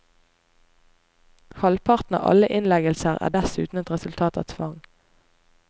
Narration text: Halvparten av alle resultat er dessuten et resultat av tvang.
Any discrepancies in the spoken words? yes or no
yes